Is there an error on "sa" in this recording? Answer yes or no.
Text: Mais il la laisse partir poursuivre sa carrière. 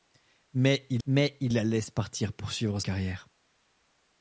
yes